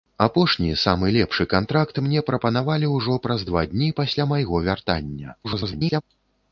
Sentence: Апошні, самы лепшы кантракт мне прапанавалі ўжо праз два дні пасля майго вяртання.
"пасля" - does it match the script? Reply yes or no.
yes